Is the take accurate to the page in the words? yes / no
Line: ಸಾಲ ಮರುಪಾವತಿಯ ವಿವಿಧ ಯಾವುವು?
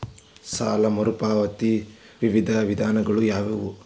no